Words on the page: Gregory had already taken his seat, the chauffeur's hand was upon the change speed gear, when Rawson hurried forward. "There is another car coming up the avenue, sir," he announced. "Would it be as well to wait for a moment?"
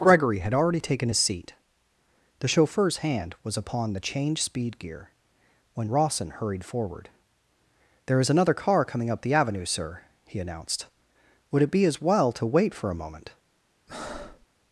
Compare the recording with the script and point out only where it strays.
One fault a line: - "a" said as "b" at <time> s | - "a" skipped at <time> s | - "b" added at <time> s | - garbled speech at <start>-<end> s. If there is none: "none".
none